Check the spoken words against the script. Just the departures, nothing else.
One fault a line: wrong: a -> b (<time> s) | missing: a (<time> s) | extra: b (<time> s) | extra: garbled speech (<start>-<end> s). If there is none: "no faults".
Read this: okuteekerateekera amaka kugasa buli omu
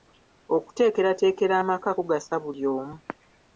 no faults